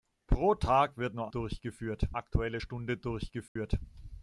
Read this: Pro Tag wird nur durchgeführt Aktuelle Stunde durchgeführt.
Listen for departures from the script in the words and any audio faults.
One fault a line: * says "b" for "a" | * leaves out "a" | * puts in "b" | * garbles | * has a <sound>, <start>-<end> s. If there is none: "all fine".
* has a dropout, 3.5-3.6 s